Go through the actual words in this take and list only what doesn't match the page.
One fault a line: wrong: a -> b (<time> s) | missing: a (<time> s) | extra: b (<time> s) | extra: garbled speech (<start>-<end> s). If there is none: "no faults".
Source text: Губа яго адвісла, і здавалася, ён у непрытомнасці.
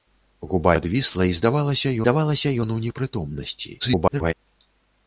missing: яго (0.7 s)
extra: здавалася (2.0 s)
extra: garbled speech (3.8-4.3 s)